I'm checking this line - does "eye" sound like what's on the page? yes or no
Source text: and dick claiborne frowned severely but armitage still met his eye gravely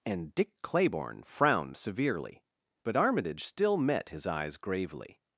no